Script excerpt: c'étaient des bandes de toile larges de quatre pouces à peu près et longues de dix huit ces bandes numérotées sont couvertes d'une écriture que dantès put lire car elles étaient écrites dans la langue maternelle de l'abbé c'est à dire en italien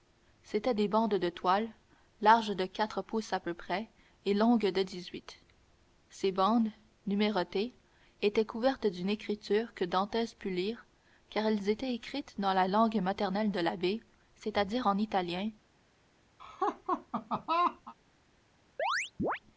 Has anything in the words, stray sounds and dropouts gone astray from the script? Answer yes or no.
yes